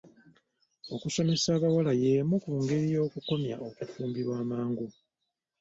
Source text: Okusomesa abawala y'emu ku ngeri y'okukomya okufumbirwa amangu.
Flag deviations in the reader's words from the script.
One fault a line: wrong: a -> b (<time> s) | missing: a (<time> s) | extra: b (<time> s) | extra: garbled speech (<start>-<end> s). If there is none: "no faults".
no faults